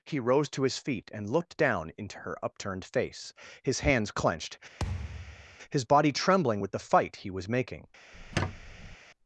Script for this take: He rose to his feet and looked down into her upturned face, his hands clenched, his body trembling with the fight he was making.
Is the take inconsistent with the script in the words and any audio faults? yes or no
yes